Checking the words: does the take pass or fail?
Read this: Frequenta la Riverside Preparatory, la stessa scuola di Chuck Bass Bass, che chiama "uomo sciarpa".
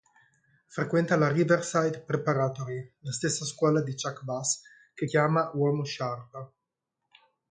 fail